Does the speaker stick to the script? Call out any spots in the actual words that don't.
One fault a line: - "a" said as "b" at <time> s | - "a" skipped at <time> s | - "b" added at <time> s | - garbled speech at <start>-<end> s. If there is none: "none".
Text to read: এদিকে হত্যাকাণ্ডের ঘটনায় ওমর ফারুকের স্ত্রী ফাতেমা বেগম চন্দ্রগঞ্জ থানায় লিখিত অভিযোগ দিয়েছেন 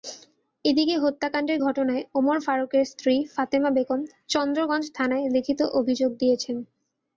none